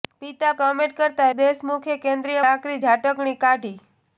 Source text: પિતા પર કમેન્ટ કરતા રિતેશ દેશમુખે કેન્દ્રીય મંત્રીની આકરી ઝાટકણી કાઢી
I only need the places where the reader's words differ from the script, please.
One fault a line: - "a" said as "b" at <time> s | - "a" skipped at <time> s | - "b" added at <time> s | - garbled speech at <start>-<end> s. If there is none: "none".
- "પર" skipped at 0.5 s
- "રિતેશ" skipped at 1.3 s
- "મંત્રીની" skipped at 2.4 s